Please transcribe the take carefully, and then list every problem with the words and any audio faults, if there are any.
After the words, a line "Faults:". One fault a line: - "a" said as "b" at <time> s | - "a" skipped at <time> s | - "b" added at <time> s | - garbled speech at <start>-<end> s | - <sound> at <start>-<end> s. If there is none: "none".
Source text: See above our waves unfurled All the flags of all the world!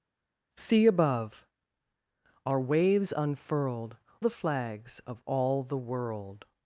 See above our waves unfurled The flags of all the world!
Faults:
- "All" skipped at 4.0 s